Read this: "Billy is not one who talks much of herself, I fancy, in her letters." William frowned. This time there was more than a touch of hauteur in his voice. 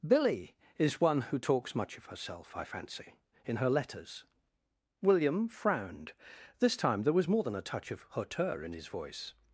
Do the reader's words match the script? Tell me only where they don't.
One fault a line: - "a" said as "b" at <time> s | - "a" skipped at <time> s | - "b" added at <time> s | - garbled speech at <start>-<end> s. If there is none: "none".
- "not" skipped at 1.0 s